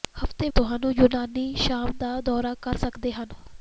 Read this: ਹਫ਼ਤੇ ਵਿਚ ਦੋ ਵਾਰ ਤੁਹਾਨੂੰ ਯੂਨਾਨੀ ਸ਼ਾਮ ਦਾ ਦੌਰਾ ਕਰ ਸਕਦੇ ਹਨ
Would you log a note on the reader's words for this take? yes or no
yes